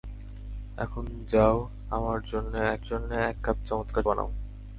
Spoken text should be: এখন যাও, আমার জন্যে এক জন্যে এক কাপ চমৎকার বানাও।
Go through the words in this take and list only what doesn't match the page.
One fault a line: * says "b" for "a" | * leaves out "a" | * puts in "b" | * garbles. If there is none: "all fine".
all fine